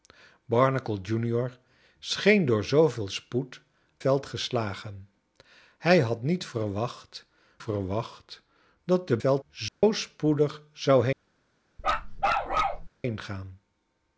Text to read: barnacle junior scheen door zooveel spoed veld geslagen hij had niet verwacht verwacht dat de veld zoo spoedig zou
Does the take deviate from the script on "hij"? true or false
false